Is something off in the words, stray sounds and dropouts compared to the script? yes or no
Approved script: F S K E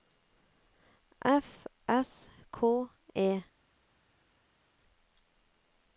no